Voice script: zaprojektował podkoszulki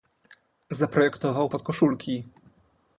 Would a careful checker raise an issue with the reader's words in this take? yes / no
no